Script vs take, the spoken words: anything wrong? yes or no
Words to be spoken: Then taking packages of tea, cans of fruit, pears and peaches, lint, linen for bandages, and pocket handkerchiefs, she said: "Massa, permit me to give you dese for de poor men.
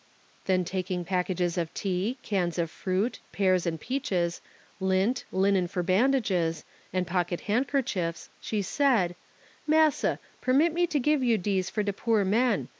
no